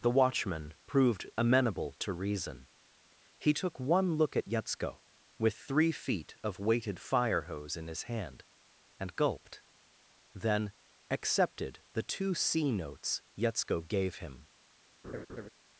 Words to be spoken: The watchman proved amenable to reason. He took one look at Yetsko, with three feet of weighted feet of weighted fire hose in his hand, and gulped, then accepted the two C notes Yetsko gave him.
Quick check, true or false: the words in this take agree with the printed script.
false